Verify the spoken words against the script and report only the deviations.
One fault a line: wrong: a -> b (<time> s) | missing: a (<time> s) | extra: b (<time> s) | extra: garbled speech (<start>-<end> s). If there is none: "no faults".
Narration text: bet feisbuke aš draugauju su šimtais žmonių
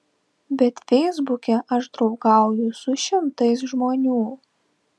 no faults